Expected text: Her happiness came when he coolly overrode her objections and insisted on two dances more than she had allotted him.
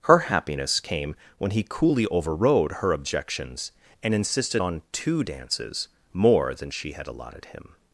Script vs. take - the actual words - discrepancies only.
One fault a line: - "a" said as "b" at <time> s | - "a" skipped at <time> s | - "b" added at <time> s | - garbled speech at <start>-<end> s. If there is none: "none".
none